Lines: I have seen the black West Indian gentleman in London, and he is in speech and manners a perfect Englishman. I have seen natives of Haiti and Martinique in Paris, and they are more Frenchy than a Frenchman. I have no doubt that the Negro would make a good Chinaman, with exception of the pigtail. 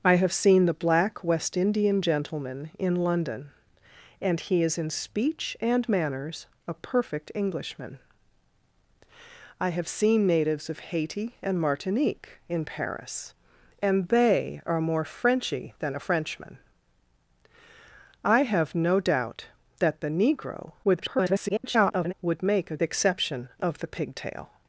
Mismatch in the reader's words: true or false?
true